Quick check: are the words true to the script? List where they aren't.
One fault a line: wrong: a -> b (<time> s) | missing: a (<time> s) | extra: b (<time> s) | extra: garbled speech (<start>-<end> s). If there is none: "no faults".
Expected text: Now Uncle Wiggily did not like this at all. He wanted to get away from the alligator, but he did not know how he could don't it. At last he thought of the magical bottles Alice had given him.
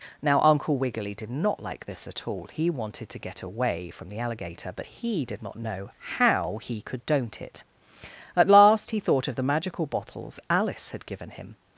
no faults